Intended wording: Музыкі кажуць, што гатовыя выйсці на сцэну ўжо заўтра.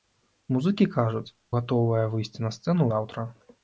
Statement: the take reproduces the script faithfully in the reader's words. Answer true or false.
false